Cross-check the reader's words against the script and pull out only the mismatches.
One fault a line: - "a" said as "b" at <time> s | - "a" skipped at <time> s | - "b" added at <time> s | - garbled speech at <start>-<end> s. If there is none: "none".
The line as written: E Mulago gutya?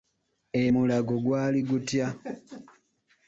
- "gwali" added at 1.2 s